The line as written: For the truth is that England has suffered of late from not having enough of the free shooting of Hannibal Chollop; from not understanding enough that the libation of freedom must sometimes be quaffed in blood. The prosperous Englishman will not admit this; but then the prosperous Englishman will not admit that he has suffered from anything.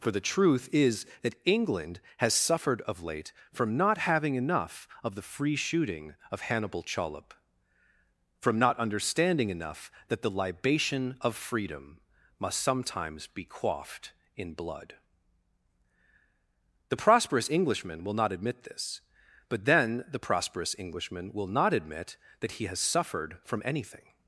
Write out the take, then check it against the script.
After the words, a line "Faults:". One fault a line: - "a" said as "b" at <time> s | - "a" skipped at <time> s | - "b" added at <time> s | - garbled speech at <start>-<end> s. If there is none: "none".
For the truth is that England has suffered of late from not having enough of the free shooting of Hannibal Chollop; from not understanding enough that the libation of freedom must sometimes be quaffed in blood. The prosperous Englishman will not admit this; but then the prosperous Englishman will not admit that he has suffered from anything.
Faults:
none